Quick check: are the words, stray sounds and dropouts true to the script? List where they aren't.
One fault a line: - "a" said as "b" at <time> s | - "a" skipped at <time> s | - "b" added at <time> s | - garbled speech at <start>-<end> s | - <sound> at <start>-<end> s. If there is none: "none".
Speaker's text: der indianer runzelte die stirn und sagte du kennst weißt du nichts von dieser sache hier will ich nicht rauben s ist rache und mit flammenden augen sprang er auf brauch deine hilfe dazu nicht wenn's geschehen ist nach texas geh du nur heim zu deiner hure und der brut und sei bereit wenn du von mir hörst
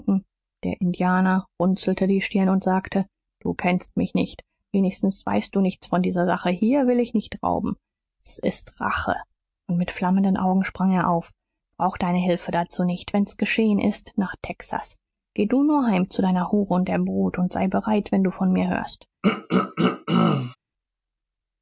- "mich nicht wenigstens" added at 4.0 s
- throat clearing at 19.2-20.6 s